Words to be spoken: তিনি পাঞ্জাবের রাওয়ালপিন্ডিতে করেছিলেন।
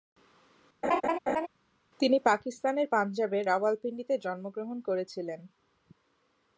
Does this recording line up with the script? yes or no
no